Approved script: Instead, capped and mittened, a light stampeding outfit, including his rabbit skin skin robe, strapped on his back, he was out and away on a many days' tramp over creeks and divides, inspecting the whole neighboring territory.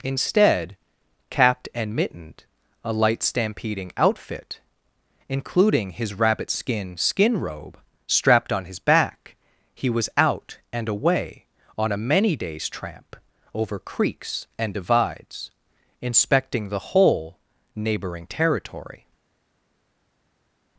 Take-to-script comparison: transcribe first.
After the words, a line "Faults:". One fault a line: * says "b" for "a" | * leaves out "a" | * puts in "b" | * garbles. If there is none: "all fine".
Instead, capped and mittened, a light stampeding outfit, including his rabbit skin skin robe, strapped on his back, he was out and away on a many days' tramp over creeks and divides, inspecting the whole neighboring territory.
Faults:
all fine